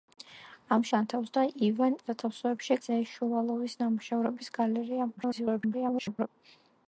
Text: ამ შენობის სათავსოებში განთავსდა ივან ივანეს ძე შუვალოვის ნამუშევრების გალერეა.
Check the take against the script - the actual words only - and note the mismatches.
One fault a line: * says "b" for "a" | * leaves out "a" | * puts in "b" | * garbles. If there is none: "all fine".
* leaves out "შენობის სათავსოებში"
* says "სათავსოებში" for "ივანეს"
* garbles